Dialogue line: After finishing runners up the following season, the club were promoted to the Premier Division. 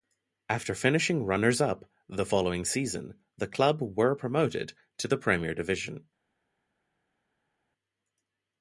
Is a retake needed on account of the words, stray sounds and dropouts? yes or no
no